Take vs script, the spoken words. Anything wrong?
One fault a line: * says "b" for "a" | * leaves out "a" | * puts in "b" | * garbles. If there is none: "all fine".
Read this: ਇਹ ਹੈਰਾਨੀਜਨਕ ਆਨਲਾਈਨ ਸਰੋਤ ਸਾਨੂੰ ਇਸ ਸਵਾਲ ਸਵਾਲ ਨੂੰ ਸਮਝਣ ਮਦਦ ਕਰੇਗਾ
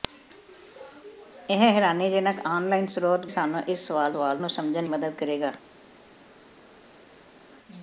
all fine